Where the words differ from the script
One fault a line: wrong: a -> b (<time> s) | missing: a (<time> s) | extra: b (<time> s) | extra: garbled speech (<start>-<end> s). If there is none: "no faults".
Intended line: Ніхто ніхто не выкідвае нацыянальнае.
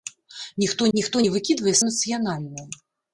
no faults